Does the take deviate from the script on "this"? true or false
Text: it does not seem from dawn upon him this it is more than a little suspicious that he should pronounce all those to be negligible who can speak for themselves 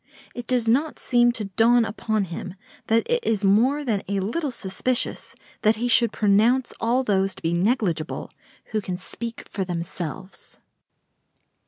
true